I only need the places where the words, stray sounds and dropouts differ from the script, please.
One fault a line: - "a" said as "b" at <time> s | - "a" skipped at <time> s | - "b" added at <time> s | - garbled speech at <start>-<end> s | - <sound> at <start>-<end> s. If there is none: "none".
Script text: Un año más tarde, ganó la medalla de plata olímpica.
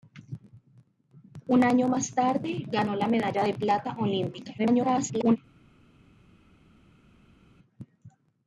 - garbled speech at 4.6-5.4 s